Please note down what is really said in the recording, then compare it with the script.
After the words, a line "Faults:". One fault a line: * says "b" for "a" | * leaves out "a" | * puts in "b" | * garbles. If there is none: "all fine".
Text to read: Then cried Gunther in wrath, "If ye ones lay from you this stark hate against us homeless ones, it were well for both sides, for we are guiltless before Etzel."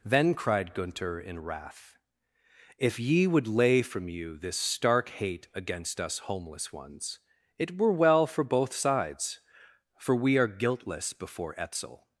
Then cried Gunther in wrath, "If ye would lay from you this stark hate against us homeless ones, it were well for both sides, for we are guiltless before Etzel."
Faults:
* says "would" for "ones"